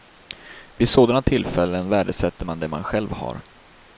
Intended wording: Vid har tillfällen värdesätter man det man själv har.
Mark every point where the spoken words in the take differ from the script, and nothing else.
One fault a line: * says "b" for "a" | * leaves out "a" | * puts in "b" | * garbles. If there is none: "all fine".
* says "sådana" for "har"